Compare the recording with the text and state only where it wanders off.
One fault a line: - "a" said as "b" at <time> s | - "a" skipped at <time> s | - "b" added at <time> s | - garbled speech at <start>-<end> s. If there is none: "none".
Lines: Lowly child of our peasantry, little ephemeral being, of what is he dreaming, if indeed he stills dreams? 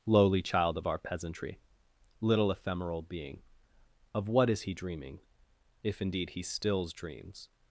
none